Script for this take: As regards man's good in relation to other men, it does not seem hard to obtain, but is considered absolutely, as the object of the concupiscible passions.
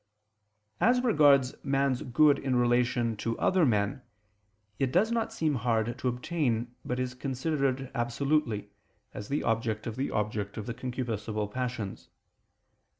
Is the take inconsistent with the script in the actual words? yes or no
yes